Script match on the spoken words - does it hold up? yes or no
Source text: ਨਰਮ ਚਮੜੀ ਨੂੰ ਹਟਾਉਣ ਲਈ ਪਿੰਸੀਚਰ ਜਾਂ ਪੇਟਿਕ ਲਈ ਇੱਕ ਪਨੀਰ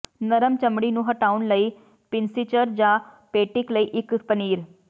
yes